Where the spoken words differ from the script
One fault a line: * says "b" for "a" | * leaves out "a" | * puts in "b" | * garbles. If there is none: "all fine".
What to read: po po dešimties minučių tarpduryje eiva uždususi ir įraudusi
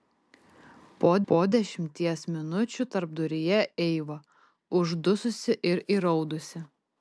all fine